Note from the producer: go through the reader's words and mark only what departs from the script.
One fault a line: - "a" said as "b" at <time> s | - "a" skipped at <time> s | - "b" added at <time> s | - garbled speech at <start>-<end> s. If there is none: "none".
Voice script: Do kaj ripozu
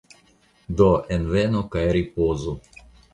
- "envenu" added at 1.2 s